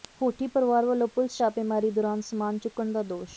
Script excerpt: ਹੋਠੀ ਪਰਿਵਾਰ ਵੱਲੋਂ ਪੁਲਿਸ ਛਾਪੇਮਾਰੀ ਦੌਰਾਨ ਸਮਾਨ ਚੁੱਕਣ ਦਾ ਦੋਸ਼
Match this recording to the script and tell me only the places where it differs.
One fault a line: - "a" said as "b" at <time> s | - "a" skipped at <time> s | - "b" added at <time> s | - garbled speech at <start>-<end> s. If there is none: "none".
none